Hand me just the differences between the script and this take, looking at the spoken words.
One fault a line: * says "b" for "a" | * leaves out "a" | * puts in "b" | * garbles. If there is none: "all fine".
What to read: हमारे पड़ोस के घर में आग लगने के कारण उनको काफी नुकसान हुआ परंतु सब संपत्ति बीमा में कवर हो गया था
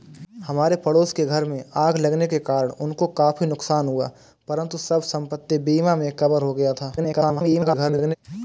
* garbles